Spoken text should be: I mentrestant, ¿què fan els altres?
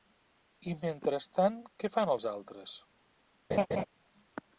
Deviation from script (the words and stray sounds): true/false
true